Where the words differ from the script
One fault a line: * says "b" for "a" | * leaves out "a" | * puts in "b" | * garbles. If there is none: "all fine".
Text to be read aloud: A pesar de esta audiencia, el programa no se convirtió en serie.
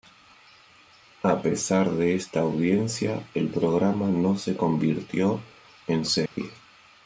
all fine